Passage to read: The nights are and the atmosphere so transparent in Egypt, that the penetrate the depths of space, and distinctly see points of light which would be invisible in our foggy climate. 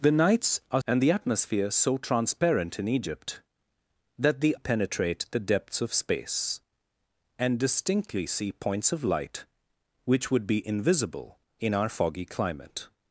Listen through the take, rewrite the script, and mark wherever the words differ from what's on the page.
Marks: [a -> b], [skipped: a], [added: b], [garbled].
The nights are and the atmosphere so transparent in Egypt, that the penetrate the depths of space, and distinctly see points of light which would be invisible in our foggy climate.